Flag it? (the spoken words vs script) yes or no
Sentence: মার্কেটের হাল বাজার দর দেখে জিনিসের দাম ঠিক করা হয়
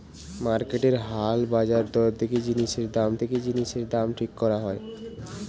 yes